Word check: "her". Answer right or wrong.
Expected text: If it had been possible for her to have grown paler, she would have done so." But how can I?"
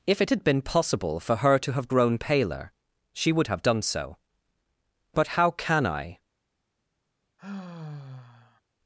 right